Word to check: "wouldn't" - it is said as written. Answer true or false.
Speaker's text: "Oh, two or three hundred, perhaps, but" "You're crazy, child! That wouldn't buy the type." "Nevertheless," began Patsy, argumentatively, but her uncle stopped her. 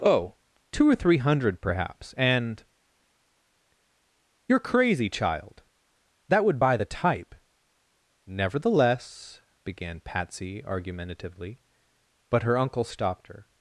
false